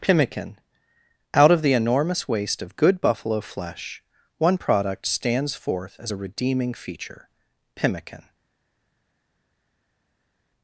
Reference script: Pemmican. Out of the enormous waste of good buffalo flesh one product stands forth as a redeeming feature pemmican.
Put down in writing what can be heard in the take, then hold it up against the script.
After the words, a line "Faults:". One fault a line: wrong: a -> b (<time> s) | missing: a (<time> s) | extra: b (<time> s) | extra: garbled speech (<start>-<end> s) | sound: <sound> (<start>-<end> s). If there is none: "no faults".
Pemmican. Out of the enormous waste of good buffalo flesh one product stands forth as a redeeming feature pemmican.
Faults:
no faults